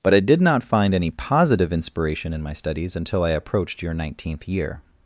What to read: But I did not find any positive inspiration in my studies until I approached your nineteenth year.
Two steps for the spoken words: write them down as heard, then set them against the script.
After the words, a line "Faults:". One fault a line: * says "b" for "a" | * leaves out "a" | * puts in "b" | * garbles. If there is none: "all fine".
But I did not find any positive inspiration in my studies until I approached your nineteenth year.
Faults:
all fine